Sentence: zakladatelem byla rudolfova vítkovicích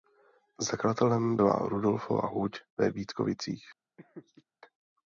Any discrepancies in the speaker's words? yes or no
yes